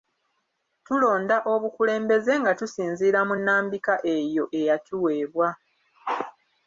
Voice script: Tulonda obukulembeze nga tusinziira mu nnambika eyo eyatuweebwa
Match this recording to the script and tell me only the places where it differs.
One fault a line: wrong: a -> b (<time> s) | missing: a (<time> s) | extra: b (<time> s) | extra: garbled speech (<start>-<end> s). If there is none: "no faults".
no faults